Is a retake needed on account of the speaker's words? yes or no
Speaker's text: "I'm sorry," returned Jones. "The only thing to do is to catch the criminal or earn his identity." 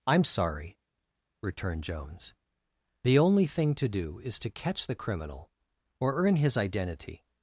no